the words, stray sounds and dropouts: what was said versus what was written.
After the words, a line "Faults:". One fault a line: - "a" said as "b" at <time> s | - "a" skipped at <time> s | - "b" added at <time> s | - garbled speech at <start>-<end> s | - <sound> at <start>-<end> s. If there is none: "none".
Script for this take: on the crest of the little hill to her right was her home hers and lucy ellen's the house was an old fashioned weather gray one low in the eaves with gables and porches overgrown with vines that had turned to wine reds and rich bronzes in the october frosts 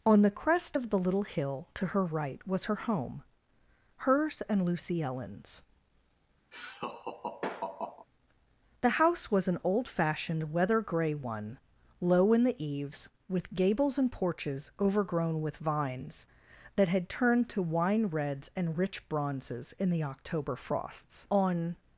on the crest of the little hill to her right was her home hers and lucy ellen's the house was an old fashioned weather gray one low in the eaves with gables and porches overgrown with vines that had turned to wine reds and rich bronzes in the october frosts on
Faults:
- laugh at 6.5-8.1 s
- "on" added at 21.3 s